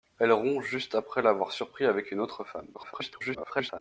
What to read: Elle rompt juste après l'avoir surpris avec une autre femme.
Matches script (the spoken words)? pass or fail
fail